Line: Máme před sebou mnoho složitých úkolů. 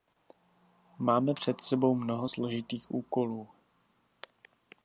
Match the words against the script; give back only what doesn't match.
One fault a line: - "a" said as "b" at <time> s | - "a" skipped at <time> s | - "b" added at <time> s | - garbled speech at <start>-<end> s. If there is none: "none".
none